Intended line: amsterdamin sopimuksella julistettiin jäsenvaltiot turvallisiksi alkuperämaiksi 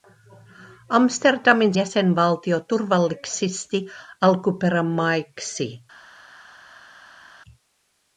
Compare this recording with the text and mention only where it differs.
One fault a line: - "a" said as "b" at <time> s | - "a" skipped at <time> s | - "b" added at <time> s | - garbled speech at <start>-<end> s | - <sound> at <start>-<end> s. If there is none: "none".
- "sopimuksella julistettiin" skipped at 1.7 s